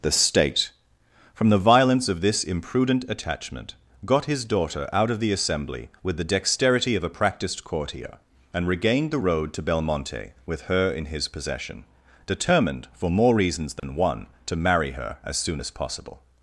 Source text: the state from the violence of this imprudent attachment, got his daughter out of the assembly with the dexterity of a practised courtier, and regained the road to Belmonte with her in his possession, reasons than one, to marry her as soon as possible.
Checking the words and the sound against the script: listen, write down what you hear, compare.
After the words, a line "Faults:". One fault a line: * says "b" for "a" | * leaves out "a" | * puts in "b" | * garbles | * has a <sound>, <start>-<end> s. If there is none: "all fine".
the state from the violence of this imprudent attachment, got his daughter out of the assembly with the dexterity of a practised courtier, and regained the road to Belmonte with her in his possession, determined, for more reasons than one, to marry her as soon as possible.
Faults:
* puts in "determined for more"
* has a dropout, 13.8-13.8 s